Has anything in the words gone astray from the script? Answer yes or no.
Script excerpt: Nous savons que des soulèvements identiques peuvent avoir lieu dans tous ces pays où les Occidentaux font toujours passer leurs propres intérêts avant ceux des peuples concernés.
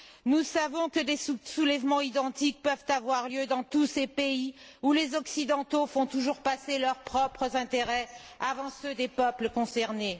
no